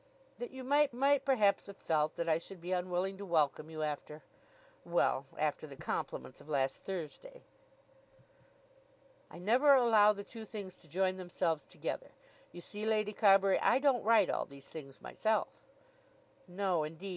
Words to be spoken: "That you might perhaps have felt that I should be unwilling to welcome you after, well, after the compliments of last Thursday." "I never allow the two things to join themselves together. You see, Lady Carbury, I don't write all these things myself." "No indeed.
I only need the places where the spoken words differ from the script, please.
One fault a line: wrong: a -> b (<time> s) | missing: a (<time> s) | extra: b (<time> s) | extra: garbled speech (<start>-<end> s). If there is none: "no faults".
extra: might (0.9 s)